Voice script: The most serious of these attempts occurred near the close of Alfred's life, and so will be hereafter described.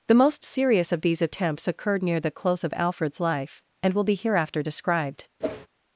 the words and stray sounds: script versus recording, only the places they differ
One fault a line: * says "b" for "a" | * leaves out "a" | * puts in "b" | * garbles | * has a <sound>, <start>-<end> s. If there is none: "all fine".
* leaves out "so"
* has a whoosh, 5.4-5.7 s